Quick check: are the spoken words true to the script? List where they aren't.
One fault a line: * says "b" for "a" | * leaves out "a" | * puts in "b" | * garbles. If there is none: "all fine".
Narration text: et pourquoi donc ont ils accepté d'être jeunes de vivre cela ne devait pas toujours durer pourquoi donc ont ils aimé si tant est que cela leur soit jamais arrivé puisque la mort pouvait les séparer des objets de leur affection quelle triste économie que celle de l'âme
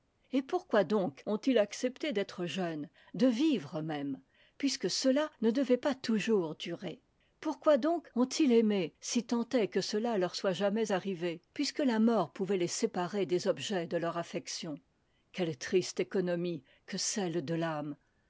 * puts in "même puisque"